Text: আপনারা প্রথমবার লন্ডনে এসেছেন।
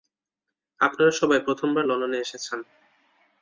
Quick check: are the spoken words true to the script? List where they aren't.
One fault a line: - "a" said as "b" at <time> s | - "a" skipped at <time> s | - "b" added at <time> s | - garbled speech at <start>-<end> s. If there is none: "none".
- "সবাই" added at 1.1 s